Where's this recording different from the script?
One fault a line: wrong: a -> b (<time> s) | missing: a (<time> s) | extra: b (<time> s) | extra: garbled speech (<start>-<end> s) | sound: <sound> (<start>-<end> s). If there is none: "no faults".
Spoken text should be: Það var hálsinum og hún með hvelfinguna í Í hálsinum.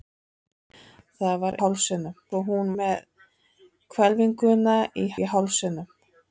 no faults